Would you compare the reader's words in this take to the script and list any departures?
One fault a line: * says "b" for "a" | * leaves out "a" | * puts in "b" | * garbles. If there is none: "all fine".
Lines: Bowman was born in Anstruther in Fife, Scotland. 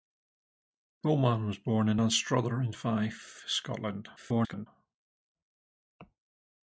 * garbles